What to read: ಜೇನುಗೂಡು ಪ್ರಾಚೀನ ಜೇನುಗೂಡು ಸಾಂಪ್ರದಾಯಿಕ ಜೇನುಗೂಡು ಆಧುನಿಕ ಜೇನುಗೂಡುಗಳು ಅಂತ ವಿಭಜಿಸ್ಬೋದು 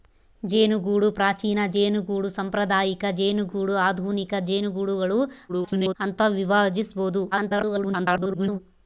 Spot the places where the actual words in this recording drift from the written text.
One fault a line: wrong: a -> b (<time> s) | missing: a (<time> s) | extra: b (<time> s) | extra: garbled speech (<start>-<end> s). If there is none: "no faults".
extra: garbled speech (5.5-5.9 s)
extra: garbled speech (7.3-8.6 s)